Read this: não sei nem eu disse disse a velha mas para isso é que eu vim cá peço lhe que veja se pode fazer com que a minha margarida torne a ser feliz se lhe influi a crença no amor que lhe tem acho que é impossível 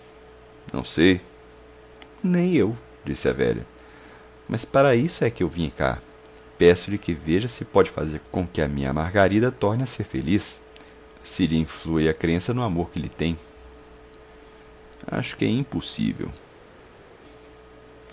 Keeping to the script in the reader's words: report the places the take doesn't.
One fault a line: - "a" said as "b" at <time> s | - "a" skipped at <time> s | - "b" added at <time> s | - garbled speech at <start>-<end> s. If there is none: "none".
- "disse" skipped at 3.3 s